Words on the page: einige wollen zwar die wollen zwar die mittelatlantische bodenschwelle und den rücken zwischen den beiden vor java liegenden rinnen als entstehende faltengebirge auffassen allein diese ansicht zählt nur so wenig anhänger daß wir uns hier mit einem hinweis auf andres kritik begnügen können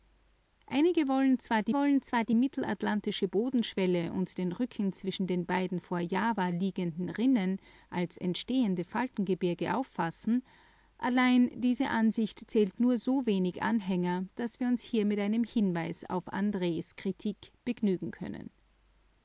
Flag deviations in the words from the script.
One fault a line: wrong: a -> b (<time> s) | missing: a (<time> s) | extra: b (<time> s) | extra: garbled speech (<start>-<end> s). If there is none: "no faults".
no faults